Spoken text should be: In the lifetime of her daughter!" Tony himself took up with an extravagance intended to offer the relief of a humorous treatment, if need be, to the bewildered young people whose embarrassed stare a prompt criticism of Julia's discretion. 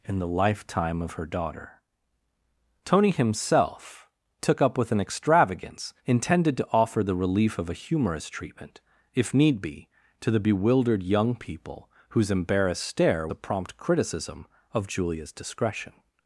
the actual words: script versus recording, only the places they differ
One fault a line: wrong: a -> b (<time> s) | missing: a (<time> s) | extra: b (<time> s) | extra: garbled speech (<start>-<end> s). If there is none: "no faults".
no faults